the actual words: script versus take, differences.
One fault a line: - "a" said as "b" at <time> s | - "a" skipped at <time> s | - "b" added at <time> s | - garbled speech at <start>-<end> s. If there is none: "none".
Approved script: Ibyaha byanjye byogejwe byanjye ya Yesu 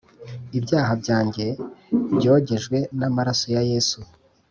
- "byanjye" said as "n'amaraso" at 3.0 s